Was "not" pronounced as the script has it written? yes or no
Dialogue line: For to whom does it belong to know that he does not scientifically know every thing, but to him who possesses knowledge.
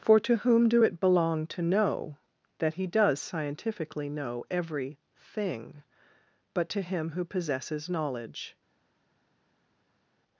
no